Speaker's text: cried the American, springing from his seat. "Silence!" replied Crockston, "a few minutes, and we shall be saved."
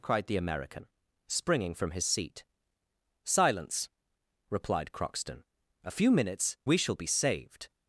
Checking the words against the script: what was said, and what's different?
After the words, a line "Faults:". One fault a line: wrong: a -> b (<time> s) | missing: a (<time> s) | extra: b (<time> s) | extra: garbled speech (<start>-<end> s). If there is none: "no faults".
cried the American, springing from his seat. "Silence!" replied Crockston, "a few minutes, we shall be saved."
Faults:
missing: and (6.6 s)